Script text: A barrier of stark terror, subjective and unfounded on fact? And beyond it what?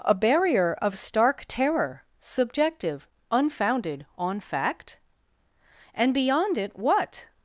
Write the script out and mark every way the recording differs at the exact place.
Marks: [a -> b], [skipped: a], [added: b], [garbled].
A barrier of stark terror, subjective [skipped: and] unfounded on fact? And beyond it what?